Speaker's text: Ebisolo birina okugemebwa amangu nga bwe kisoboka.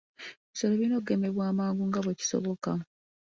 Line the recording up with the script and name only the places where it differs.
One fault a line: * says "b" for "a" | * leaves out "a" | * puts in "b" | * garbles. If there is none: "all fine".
all fine